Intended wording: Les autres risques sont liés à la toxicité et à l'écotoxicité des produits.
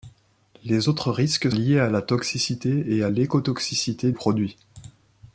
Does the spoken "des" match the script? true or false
false